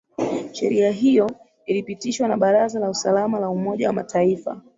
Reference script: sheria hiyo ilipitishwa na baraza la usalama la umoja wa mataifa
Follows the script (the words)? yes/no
yes